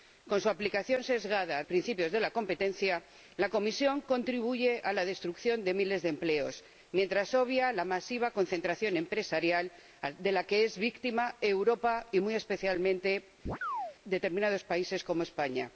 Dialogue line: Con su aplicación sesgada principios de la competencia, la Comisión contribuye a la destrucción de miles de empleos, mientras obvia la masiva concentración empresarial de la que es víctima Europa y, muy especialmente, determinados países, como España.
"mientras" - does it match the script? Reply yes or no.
yes